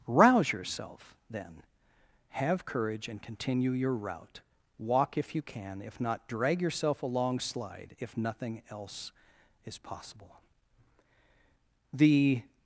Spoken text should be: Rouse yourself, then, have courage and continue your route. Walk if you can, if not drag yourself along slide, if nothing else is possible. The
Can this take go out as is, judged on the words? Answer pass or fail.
pass